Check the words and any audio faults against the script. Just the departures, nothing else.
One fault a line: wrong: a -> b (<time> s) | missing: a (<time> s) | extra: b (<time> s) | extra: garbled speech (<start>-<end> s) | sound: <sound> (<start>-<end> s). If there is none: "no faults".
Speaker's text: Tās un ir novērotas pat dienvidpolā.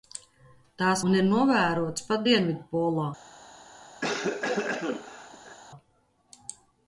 sound: cough (4.0-5.6 s)